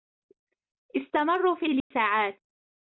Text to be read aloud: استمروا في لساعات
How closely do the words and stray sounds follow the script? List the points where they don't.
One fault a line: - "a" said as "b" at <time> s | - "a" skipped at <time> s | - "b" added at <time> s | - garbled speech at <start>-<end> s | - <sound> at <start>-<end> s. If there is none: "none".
- dropout at 1.8-1.9 s